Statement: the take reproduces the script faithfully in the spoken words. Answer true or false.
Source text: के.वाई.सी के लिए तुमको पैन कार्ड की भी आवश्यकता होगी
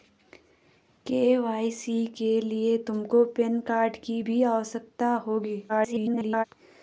false